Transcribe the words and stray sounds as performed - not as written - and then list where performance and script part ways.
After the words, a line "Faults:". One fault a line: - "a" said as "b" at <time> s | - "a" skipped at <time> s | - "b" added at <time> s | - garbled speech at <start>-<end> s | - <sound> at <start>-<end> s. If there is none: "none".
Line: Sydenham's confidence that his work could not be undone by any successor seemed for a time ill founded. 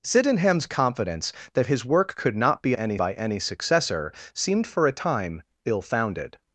Sydenham's confidence that his work could not be any by any successor seemed for a time ill founded.
Faults:
- "undone" said as "any" at 2.7 s